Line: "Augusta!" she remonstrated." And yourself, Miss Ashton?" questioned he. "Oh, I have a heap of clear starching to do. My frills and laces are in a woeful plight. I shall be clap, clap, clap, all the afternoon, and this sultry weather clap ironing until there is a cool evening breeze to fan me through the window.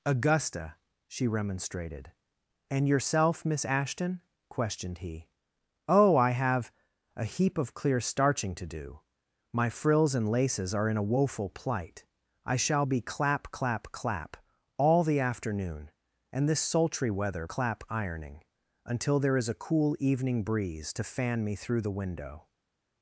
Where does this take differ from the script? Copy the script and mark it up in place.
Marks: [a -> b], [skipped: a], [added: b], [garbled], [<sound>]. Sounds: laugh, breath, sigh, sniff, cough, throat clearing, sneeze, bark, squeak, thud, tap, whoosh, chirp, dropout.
"Augusta!" she remonstrated." And yourself, Miss Ashton?" questioned he. "Oh, I have a heap of clear starching to do. My frills and laces are in a woeful plight. I shall be clap, clap, clap, all the afternoon, and this sultry weather clap ironing until there is a cool evening breeze to fan me through the window.